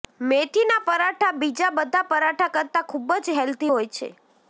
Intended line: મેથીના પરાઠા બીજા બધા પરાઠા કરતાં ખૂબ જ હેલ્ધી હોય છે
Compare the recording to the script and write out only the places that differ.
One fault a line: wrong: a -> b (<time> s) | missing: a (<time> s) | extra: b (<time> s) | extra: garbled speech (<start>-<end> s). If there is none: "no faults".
no faults